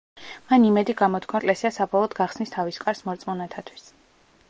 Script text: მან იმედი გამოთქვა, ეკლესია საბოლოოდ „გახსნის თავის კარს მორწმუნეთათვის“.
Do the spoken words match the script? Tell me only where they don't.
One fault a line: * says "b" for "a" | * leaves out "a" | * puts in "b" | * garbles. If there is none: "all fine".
all fine